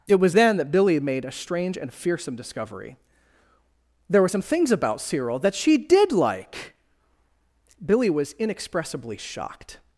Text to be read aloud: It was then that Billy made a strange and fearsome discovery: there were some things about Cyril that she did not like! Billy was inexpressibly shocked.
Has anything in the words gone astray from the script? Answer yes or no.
yes